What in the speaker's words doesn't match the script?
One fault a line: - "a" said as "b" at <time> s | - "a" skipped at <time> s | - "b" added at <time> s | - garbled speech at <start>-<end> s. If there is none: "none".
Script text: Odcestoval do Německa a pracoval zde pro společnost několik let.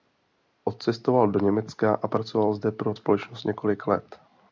none